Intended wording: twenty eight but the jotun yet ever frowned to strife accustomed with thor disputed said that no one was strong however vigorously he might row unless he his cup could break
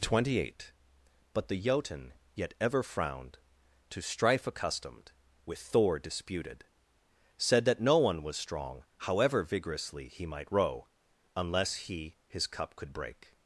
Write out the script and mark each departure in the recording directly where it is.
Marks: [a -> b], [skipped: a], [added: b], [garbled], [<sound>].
twenty eight but the jotun yet ever frowned to strife accustomed with thor disputed said that no one was strong however vigorously he might row unless he his cup could break